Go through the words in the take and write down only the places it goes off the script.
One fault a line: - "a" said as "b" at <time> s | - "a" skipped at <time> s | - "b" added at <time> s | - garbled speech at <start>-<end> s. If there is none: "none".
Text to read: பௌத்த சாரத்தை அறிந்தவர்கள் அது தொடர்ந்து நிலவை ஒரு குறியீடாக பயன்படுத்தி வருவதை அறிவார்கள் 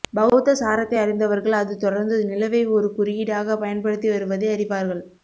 none